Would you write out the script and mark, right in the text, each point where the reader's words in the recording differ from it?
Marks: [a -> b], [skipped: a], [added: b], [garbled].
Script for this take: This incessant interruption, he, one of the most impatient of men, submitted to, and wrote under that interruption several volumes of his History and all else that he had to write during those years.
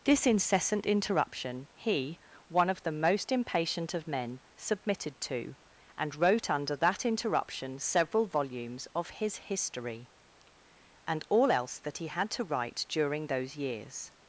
This incessant interruption, he, one of the most impatient of men, submitted to, and wrote under that interruption several volumes of his History and all else that he had to write during those years.